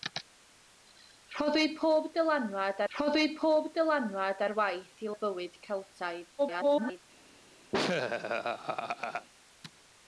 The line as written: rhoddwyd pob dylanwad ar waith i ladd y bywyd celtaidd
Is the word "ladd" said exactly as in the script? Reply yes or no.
no